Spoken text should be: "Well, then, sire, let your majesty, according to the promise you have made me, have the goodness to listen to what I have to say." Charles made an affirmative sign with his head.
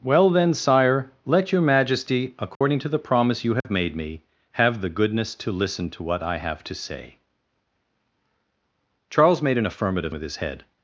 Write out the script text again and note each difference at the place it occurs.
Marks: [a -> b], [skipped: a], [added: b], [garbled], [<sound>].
"Well, then, sire, let your majesty, according [dropout] to the promise you have [dropout] made me, have the goodness to listen to what I have to say." Charles made an affirmative [skipped: sign] with his head.